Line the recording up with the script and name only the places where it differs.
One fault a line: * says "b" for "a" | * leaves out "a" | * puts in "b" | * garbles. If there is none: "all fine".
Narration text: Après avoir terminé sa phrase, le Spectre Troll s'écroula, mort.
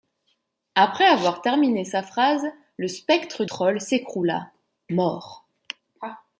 all fine